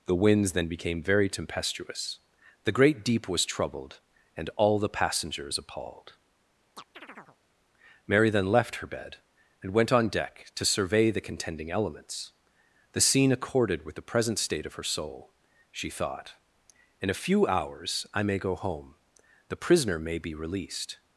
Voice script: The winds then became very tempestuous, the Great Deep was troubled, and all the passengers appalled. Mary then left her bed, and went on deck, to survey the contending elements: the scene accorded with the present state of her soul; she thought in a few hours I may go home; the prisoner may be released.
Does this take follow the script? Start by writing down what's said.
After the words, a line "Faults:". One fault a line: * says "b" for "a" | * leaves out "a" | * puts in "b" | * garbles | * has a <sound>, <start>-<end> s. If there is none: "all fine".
The winds then became very tempestuous, the Great Deep was troubled, and all the passengers appalled. Mary then left her bed, and went on deck, to survey the contending elements: the scene accorded with the present state of her soul; she thought in a few hours I may go home; the prisoner may be released.
Faults:
* has a chirp, 6.8-7.4 s